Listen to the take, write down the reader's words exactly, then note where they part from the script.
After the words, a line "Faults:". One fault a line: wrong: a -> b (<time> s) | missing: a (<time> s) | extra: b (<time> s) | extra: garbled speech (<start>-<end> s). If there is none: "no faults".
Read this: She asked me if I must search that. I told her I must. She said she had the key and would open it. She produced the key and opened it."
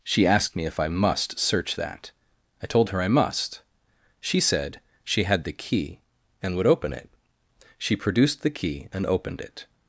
She asked me if I must search that. I told her I must. She said she had the key and would open it. She produced the key and opened it."
Faults:
no faults